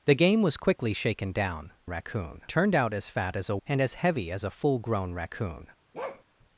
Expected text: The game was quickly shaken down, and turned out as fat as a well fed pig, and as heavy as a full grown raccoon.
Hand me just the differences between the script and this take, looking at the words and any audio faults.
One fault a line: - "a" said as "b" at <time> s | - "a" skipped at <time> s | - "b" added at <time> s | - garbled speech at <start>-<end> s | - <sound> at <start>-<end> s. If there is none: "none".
- "and" said as "raccoon" at 1.9 s
- "well fed pig" skipped at 3.6 s
- bark at 5.9-6.2 s